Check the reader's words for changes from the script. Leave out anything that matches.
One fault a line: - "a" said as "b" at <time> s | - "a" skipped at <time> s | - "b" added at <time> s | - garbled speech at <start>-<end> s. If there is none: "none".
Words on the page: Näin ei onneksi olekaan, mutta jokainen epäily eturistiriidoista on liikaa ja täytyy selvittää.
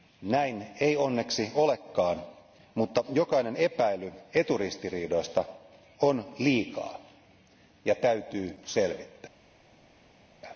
none